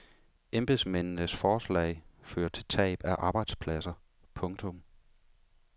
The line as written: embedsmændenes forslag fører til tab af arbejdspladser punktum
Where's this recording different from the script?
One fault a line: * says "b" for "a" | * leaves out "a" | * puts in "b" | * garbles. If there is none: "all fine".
all fine